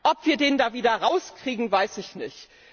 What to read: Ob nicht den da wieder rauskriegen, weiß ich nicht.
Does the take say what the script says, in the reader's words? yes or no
no